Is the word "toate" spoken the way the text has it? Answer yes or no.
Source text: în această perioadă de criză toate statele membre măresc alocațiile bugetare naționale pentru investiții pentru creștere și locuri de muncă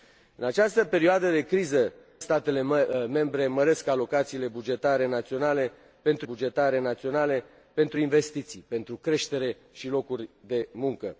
no